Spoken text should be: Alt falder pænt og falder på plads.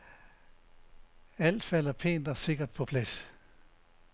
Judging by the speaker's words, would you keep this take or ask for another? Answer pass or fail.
fail